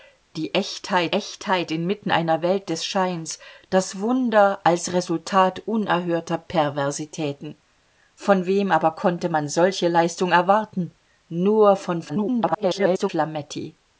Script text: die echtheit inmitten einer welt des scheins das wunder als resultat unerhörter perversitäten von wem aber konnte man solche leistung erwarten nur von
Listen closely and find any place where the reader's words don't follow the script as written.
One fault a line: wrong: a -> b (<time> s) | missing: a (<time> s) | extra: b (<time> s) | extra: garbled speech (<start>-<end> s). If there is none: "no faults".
extra: echtheit (1.1 s)
extra: garbled speech (12.1-13.1 s)